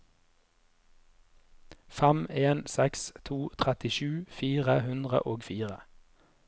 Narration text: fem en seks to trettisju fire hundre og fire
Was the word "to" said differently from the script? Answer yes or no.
no